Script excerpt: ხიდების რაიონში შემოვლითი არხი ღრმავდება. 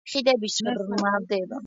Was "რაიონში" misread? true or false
true